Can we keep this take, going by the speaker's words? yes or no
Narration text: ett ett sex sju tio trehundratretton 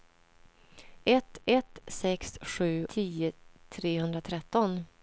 yes